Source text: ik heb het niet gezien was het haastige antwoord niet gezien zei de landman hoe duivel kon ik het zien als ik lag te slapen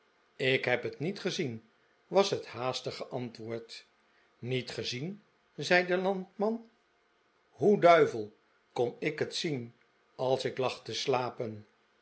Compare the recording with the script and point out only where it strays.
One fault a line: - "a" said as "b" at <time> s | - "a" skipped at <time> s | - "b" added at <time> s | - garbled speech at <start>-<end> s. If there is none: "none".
none